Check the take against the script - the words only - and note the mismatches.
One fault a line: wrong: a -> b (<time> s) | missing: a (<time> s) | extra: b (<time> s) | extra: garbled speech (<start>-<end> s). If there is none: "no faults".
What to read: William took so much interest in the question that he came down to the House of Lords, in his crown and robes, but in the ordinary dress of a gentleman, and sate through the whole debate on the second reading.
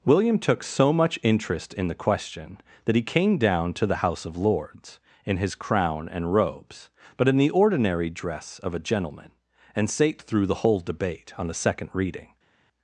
no faults